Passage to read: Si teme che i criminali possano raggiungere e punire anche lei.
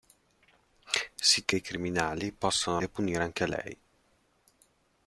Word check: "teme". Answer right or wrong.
wrong